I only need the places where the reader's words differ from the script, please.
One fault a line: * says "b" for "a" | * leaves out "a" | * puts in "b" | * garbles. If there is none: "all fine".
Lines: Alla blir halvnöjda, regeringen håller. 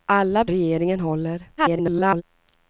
* leaves out "blir halvnöjda"
* garbles